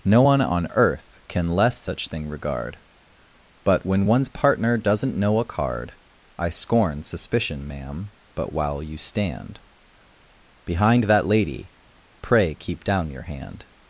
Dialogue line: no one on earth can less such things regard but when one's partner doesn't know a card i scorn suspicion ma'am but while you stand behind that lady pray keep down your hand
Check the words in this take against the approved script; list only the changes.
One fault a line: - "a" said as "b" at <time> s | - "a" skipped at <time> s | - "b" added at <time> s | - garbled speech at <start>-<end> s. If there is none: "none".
- "things" said as "thing" at 2.1 s